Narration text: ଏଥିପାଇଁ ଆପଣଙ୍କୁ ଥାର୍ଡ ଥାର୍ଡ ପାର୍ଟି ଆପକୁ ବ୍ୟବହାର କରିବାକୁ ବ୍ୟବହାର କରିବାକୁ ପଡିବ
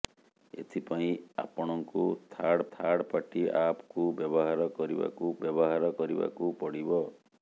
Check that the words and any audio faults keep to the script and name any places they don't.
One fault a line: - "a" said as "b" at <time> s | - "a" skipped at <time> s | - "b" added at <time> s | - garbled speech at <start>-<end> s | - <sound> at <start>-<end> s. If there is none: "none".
none